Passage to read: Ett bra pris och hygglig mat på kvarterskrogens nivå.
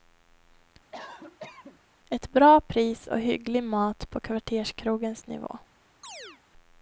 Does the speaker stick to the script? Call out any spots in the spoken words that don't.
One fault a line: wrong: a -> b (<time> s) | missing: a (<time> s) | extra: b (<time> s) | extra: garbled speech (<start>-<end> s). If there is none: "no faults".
no faults